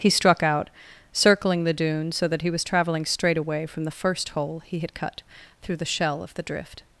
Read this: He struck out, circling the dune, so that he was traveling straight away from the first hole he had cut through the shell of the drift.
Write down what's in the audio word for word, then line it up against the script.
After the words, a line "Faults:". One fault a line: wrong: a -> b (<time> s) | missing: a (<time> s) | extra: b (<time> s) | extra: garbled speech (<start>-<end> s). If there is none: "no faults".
He struck out, circling the dune, so that he was traveling straight away from the first hole he had cut through the shell of the drift.
Faults:
no faults